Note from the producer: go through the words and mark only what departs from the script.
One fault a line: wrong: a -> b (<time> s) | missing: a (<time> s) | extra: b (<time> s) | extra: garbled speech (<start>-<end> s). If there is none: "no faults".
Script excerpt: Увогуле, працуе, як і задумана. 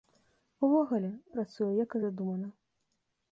no faults